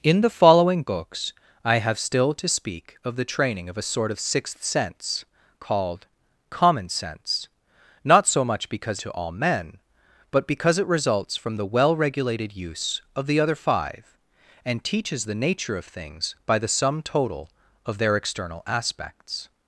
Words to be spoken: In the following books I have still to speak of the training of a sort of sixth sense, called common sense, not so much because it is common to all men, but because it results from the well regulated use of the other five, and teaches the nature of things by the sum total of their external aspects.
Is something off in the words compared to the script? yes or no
yes